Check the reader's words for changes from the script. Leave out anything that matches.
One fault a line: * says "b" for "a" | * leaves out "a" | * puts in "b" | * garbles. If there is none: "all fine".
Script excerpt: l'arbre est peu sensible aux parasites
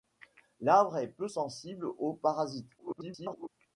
* garbles